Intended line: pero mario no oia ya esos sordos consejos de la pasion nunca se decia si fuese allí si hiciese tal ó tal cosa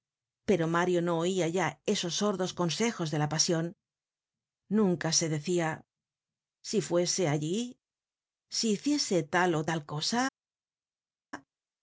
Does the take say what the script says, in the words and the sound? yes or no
yes